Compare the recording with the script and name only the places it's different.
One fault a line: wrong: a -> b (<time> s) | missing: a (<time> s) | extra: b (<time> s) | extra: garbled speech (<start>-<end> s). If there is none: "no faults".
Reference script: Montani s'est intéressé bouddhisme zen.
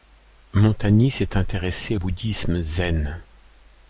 no faults